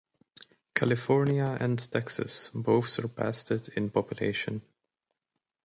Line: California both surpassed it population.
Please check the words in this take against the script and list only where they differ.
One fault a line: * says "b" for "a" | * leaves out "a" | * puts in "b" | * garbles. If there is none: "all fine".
* puts in "and Texas"
* puts in "in"